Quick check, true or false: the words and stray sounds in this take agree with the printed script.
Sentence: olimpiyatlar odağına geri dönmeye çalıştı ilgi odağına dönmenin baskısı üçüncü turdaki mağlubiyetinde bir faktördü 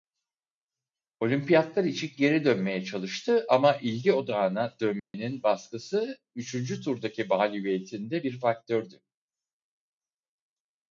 false